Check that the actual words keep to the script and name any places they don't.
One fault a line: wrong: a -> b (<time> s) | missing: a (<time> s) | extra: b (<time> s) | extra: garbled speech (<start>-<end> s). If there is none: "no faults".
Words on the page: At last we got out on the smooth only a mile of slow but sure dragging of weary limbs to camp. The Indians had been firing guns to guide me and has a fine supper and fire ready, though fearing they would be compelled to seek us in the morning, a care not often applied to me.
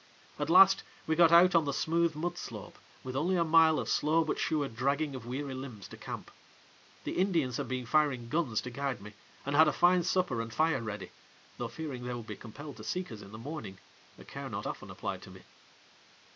extra: mud slope with (2.1 s)
wrong: has -> had (9.6 s)